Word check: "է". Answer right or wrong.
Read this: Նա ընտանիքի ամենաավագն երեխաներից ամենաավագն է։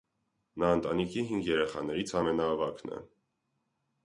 right